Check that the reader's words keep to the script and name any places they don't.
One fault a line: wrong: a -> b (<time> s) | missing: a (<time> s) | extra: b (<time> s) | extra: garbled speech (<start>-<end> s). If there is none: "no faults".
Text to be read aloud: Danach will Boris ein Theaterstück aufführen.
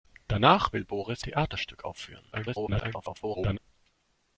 missing: ein (1.2 s)
extra: garbled speech (2.3-3.6 s)